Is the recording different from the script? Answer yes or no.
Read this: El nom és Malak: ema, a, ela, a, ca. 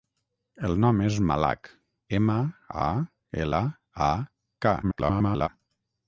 yes